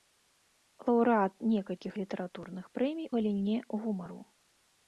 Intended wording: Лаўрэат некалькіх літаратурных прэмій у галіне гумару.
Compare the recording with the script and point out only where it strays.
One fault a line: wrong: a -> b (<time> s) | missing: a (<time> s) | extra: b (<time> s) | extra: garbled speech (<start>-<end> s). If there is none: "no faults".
missing: у (3.1 s)